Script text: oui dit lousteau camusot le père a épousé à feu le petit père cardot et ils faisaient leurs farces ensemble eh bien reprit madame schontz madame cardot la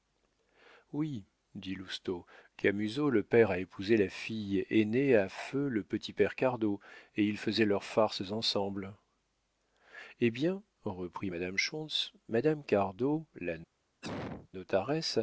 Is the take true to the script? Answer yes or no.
no